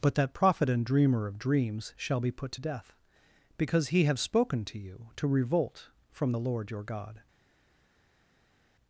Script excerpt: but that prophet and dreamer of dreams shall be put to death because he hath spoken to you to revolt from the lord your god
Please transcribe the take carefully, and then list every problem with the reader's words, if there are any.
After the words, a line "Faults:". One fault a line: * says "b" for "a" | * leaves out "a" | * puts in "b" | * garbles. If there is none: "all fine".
but that prophet and dreamer of dreams shall be put to death because he have spoken to you to revolt from the lord your god
Faults:
* says "have" for "hath"